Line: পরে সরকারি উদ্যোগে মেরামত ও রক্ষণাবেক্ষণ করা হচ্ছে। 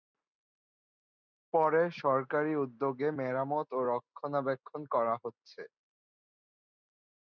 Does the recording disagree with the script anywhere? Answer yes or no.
no